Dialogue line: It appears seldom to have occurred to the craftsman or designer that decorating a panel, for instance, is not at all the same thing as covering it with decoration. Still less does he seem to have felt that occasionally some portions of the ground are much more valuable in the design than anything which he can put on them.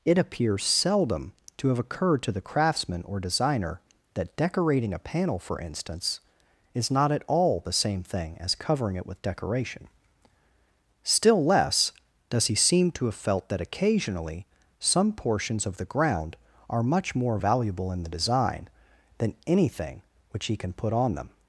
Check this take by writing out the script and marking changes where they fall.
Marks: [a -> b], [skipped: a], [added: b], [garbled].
It appears seldom to have occurred to the craftsman or designer that decorating a panel, for instance, is not at all the same thing as covering it with decoration. Still less does he seem to have felt that occasionally some portions of the ground are much more valuable in the design than anything which he can put on them.